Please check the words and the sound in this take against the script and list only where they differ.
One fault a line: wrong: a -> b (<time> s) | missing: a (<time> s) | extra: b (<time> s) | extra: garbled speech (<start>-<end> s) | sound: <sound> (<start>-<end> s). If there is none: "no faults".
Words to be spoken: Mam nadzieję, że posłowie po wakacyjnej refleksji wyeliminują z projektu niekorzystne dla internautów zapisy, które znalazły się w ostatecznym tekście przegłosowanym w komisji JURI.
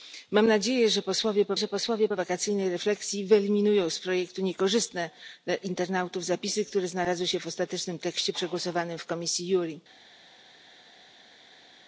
extra: że posłowie po (1.6 s)